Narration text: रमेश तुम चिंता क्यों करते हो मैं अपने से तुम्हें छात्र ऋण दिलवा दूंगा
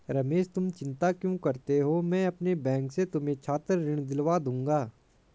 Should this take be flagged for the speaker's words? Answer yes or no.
yes